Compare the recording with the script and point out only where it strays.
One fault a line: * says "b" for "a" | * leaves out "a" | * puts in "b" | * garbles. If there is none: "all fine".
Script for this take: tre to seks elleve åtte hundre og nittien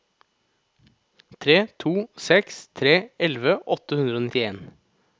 * puts in "tre"